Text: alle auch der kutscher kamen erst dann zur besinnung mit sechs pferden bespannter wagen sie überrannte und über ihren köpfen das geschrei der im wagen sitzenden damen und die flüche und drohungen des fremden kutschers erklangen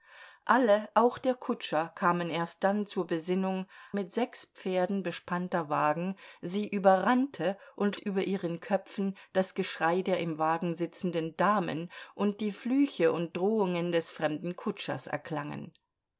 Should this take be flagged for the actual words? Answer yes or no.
no